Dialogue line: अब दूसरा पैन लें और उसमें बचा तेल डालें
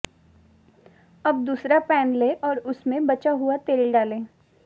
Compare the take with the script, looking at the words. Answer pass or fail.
fail